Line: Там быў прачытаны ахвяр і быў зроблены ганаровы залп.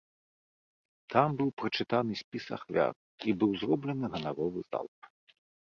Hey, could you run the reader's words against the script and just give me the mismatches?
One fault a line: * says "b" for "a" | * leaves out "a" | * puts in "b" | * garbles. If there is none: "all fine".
* puts in "спіс"